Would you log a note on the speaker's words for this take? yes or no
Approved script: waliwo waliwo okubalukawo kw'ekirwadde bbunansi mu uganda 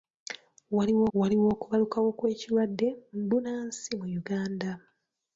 no